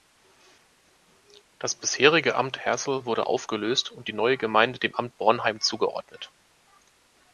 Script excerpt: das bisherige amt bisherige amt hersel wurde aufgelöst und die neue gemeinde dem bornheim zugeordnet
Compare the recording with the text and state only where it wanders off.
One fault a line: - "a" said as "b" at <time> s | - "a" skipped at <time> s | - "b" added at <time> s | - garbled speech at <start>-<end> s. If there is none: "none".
- "bisherige amt" skipped at 2.6 s
- "amt" added at 4.9 s